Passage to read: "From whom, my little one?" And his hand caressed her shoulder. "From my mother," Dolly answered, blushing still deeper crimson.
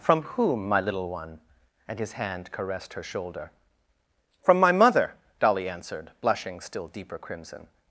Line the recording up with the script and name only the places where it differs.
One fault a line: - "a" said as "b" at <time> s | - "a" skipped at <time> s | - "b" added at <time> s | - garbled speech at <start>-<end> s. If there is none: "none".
none